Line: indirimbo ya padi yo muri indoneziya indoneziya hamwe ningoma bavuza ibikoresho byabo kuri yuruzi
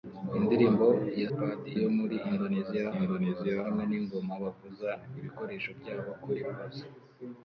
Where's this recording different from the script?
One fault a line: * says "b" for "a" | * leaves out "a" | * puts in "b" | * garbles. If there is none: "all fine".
all fine